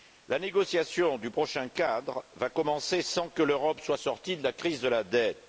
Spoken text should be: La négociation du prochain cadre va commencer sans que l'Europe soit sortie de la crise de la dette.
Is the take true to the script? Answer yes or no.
yes